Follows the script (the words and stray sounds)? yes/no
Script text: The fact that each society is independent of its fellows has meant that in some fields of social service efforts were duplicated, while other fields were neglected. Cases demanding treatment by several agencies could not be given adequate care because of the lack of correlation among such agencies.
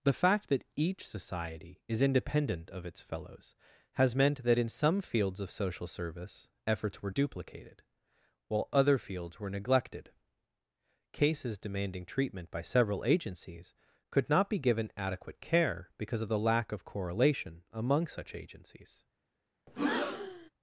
no